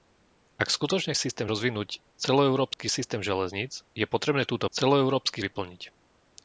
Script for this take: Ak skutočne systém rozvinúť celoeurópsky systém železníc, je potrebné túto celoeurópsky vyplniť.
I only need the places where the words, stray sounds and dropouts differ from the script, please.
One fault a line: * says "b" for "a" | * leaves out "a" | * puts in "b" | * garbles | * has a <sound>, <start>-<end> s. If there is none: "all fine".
* has a dropout, 2.7-2.8 s